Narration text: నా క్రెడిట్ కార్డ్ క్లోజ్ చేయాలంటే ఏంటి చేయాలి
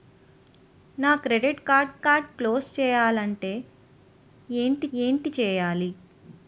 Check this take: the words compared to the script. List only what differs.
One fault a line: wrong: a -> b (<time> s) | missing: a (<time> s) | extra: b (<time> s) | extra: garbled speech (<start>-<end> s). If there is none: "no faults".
extra: కార్డ్ (2.0 s)
extra: ఏంటి (4.9 s)